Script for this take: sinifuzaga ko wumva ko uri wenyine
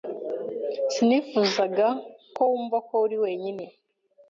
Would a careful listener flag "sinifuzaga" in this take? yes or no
no